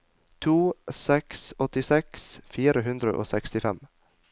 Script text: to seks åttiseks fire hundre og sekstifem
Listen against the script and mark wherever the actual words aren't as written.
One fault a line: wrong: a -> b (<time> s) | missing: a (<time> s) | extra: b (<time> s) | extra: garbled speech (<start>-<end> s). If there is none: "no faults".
no faults